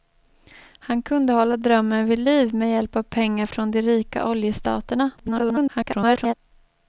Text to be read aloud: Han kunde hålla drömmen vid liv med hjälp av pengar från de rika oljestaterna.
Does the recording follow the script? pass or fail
fail